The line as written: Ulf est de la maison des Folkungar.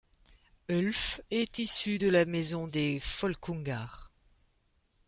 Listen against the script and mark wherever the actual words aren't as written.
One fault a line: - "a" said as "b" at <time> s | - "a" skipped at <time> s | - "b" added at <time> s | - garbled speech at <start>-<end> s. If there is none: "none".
- "issu" added at 1.6 s